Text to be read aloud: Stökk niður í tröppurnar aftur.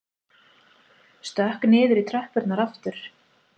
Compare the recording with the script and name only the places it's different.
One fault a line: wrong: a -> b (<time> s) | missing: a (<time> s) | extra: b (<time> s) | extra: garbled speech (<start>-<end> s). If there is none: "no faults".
no faults